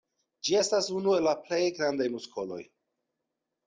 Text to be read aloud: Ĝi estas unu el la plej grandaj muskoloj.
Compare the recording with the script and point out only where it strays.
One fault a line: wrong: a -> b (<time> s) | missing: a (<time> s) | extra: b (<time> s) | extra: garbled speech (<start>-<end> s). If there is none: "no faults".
no faults